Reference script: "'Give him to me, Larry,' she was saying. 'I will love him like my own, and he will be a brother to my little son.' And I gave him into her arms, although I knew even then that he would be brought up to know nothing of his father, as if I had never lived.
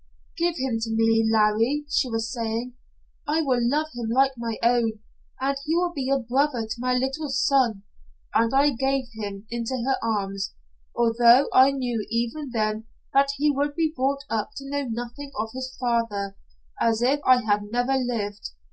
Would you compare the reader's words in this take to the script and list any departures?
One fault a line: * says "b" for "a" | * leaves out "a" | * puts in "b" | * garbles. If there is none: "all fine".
all fine